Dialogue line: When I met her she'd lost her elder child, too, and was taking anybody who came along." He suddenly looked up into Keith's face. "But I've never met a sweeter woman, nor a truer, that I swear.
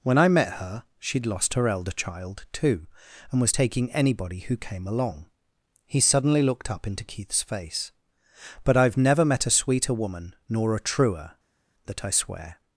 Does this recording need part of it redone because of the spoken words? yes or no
no